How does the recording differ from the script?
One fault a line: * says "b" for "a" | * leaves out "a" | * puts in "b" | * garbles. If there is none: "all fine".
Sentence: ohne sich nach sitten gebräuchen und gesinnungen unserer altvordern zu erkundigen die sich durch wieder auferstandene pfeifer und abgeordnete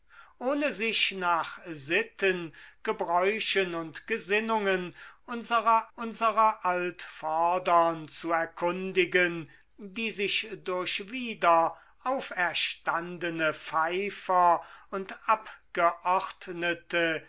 * puts in "unserer"